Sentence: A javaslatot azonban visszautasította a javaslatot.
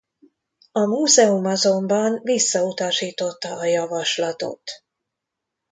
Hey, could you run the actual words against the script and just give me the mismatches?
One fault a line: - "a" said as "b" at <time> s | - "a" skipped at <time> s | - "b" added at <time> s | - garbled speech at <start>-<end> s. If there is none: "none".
- "javaslatot" said as "múzeum" at 0.8 s